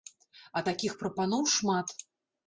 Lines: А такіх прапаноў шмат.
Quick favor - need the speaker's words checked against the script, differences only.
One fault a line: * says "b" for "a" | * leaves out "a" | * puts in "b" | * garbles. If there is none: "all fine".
all fine